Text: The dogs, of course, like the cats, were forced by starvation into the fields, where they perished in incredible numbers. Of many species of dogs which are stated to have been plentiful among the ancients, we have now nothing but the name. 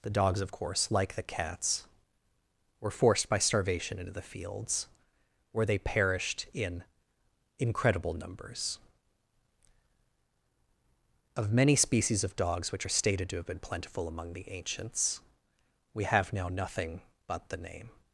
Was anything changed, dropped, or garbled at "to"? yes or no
no